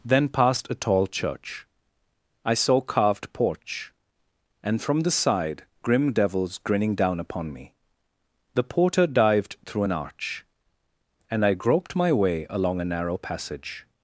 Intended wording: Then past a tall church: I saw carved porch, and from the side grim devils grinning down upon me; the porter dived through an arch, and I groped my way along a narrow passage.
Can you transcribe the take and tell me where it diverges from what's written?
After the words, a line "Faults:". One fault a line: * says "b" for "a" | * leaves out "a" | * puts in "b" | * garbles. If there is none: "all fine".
Then past a tall church: I saw carved porch, and from the side grim devils grinning down upon me; the porter dived through an arch, and I groped my way along a narrow passage.
Faults:
all fine